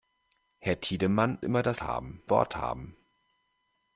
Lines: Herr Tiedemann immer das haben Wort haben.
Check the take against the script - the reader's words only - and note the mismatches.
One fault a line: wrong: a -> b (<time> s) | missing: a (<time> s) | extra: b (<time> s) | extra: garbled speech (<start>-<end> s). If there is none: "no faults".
no faults